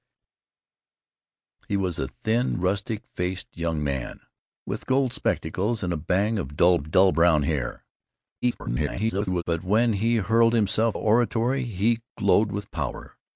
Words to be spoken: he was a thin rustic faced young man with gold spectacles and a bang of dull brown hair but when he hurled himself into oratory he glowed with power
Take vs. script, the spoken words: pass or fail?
fail